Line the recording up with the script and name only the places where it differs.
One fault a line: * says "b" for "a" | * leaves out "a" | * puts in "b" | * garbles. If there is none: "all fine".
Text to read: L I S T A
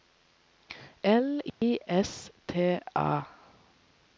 all fine